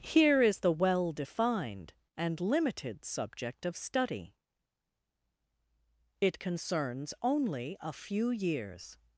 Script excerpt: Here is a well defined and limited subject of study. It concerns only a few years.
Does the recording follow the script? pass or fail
fail